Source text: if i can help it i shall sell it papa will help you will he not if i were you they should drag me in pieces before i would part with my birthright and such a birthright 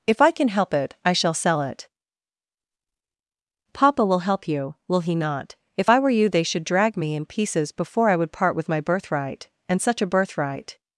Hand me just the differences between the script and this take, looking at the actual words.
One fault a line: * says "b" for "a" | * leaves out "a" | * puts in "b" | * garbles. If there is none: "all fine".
all fine